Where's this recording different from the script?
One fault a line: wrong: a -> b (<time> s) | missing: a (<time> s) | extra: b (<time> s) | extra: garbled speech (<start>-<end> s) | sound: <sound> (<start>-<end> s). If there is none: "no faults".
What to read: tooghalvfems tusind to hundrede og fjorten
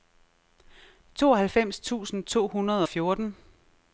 no faults